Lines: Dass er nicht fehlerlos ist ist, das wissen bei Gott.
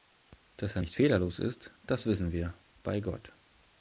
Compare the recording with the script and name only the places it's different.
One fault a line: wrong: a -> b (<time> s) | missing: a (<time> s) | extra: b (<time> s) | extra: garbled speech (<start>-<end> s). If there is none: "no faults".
missing: ist (1.7 s)
extra: wir (2.3 s)